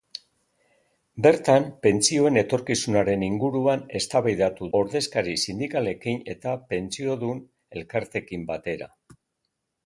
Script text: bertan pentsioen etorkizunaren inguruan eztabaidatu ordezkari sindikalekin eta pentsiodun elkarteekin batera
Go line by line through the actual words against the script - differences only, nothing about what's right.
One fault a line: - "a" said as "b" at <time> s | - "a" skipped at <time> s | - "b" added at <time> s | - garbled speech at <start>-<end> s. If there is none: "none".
none